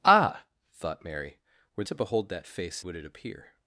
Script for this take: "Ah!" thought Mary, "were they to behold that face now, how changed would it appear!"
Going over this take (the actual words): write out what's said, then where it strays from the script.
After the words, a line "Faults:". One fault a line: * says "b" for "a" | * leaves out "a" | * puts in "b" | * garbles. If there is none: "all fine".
"Ah!" thought Mary, "were to behold that face would it appear!"
Faults:
* leaves out "they"
* leaves out "now how changed"